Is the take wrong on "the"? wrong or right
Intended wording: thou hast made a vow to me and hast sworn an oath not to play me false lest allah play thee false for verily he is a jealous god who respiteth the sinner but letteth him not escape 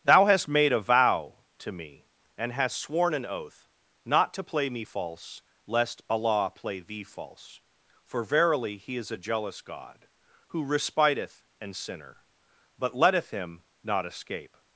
wrong